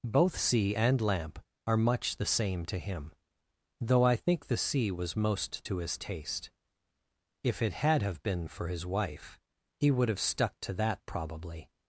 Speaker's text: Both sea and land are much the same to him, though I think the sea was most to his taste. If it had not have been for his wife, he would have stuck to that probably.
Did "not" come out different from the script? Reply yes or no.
yes